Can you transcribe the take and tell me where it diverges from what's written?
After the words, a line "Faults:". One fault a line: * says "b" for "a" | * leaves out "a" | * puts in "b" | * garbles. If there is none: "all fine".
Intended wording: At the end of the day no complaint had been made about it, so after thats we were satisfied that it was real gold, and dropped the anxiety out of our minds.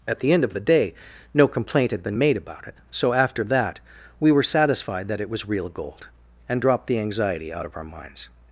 At the end of the day no complaint had been made about it, so after that we were satisfied that it was real gold, and dropped the anxiety out of our minds.
Faults:
* says "that" for "thats"